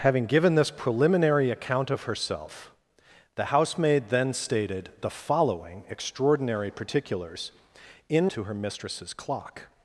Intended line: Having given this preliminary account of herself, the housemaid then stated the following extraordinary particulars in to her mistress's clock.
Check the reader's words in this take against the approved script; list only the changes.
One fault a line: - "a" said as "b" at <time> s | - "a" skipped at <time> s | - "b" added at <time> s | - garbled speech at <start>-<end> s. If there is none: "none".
none